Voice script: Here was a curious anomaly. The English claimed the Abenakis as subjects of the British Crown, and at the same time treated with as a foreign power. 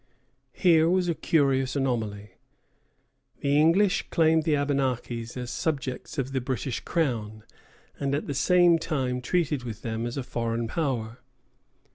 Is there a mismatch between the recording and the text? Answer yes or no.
yes